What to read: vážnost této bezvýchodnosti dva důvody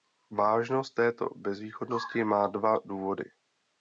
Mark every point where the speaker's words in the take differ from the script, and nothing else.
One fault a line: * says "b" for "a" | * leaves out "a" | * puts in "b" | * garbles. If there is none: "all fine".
* puts in "má"